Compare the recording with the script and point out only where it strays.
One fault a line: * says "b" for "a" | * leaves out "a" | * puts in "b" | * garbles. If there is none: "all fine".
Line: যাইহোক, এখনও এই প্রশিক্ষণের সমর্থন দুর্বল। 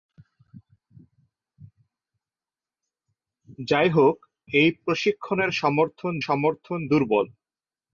* leaves out "এখনও"
* puts in "সমর্থন"